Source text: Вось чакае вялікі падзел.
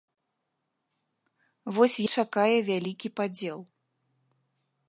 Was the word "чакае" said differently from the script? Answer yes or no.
no